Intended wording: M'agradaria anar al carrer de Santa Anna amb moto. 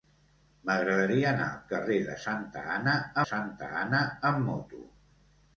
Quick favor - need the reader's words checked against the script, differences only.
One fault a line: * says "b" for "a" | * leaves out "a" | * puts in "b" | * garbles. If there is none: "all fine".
* puts in "Santa Anna"